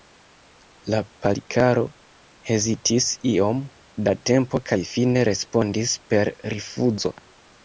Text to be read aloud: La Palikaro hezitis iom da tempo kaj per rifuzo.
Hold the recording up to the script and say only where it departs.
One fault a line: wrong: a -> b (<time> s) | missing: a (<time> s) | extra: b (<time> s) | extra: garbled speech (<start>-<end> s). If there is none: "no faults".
extra: fine respondis (4.9 s)